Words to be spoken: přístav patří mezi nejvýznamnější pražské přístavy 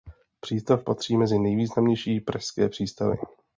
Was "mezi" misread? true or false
false